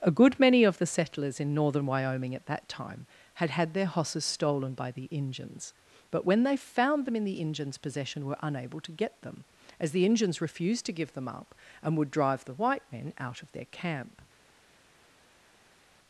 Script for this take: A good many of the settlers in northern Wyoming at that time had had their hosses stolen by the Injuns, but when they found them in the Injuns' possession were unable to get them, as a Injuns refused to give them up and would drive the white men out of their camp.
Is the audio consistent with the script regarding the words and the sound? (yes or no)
no